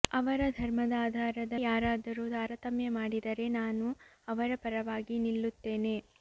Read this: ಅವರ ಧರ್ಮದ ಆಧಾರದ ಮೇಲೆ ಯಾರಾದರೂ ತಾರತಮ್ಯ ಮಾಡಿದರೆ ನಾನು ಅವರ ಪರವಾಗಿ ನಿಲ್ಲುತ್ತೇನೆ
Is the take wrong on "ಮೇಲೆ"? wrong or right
wrong